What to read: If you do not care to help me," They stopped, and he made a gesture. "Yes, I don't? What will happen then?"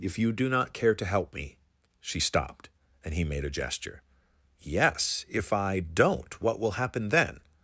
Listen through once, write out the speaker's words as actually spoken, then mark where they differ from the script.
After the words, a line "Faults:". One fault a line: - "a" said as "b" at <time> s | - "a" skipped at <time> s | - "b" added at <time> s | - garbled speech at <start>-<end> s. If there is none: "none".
If you do not care to help me," She stopped, and he made a gesture. "Yes, if I don't? What will happen then?"
Faults:
- "They" said as "She" at 2.0 s
- "if" added at 5.3 s